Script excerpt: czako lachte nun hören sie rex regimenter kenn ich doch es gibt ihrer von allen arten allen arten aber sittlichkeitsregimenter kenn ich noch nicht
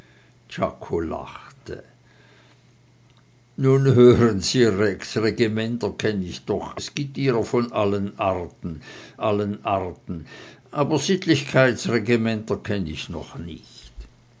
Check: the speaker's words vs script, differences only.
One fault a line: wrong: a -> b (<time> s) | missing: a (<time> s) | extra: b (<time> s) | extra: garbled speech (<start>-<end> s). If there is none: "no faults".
no faults